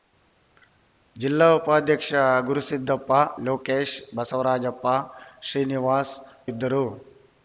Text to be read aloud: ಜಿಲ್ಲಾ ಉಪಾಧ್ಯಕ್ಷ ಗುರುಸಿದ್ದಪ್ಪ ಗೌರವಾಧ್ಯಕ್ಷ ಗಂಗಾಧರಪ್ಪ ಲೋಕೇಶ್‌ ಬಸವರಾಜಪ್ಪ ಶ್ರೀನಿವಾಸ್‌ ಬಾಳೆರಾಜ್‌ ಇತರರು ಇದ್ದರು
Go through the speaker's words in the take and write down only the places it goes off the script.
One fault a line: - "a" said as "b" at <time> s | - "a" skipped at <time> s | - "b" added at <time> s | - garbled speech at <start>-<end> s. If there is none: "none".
- "ಗೌರವಾಧ್ಯಕ್ಷ ಗಂಗಾಧರಪ್ಪ" skipped at 3.1 s
- "ಬಾಳೆರಾಜ್ ಇತರರು" skipped at 6.1 s